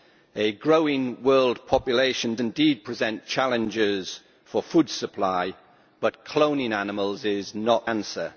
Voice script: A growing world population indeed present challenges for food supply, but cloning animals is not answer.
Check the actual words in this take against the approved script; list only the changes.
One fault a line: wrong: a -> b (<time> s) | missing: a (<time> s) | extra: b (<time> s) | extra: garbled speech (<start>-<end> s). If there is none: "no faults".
no faults